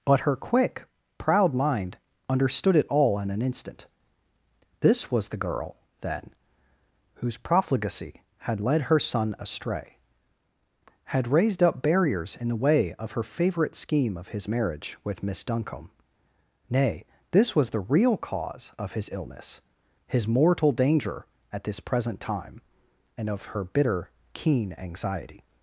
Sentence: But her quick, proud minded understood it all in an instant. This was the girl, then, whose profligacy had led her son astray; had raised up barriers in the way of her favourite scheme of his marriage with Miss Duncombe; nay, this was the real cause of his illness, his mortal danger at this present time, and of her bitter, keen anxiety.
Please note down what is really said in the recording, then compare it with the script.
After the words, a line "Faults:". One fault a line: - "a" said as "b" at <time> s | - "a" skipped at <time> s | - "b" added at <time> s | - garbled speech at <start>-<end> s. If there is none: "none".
But her quick, proud mind understood it all in an instant. This was the girl, then, whose profligacy had led her son astray; had raised up barriers in the way of her favourite scheme of his marriage with Miss Duncombe; nay, this was the real cause of his illness, his mortal danger at this present time, and of her bitter, keen anxiety.
Faults:
- "minded" said as "mind" at 1.5 s